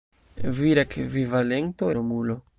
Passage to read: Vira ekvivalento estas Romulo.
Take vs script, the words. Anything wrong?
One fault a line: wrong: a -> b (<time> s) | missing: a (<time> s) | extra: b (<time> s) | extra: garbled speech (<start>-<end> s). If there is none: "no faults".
missing: estas (1.9 s)